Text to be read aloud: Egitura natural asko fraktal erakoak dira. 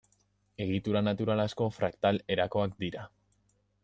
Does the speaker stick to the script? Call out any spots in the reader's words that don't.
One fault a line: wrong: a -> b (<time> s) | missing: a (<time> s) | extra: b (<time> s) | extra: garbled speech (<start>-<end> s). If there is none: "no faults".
no faults